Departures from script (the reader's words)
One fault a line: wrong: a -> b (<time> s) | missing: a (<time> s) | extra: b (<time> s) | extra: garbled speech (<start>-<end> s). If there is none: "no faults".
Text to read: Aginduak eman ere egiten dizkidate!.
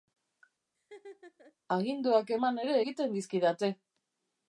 no faults